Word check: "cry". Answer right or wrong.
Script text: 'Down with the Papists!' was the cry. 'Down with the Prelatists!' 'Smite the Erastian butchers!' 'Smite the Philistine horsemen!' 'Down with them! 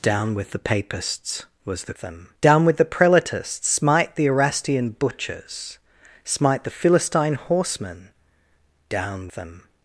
wrong